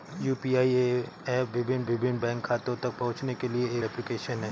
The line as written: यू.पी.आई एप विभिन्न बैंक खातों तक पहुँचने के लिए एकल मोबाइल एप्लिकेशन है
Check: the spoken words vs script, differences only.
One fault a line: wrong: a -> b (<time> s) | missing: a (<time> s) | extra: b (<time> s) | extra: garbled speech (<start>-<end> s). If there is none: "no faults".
extra: विभिन्न (1.9 s)
missing: एकल मोबाइल (3.8 s)